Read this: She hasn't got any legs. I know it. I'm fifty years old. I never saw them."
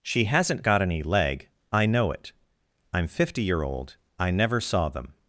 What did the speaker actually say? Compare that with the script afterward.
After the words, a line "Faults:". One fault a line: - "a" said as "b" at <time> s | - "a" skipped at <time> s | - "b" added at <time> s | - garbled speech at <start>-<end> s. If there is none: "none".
She hasn't got any leg. I know it. I'm fifty year old. I never saw them."
Faults:
- "legs" said as "leg" at 1.0 s
- "years" said as "year" at 3.4 s